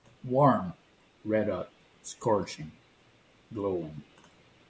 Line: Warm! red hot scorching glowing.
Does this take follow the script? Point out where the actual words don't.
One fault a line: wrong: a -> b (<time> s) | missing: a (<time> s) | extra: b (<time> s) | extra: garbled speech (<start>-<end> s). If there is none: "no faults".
no faults